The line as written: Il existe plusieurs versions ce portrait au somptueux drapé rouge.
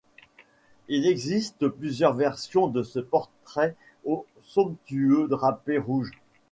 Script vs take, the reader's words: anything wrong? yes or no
yes